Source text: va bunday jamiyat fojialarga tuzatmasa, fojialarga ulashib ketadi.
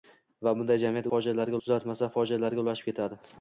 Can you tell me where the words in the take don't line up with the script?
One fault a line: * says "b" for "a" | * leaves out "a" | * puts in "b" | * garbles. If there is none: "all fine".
all fine